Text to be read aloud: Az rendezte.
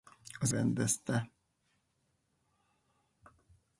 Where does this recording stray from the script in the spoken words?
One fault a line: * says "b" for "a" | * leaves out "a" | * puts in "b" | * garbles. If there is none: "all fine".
all fine